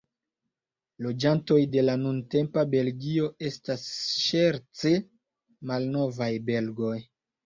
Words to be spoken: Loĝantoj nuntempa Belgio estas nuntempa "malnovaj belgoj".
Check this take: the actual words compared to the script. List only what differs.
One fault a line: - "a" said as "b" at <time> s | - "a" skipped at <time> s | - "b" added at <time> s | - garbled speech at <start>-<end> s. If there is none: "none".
- "de la" added at 1.7 s
- "nuntempa" said as "ŝerce" at 4.3 s